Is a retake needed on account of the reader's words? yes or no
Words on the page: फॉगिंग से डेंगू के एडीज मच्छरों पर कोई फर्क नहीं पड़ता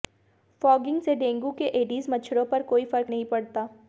no